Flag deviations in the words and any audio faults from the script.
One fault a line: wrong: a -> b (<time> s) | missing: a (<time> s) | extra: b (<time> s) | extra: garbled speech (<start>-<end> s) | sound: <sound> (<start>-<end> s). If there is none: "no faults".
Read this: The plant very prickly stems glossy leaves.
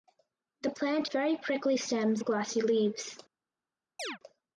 sound: chirp (4.0-4.2 s)